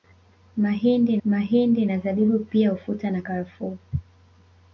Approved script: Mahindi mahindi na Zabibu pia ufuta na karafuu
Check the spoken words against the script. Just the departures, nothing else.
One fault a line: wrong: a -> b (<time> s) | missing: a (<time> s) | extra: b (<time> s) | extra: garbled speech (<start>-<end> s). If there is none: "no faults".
no faults